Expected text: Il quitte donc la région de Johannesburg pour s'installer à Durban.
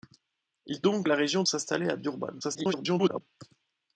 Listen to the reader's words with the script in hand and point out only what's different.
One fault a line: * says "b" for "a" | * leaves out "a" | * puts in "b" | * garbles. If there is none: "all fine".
* leaves out "quitte"
* leaves out "de Johannesburg pour"
* garbles